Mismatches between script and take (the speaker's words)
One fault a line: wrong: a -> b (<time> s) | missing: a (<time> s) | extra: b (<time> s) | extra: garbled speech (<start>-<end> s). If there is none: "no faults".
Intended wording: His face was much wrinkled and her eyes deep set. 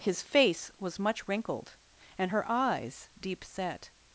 no faults